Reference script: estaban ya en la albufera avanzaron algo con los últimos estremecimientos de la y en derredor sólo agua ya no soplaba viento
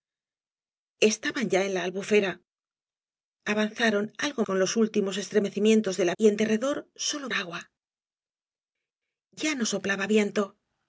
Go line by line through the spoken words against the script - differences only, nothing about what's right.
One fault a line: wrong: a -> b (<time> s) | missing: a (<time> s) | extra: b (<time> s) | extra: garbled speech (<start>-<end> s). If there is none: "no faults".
no faults